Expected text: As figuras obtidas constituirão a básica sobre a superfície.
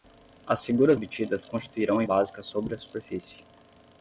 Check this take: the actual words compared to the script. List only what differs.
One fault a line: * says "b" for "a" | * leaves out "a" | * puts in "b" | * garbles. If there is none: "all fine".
all fine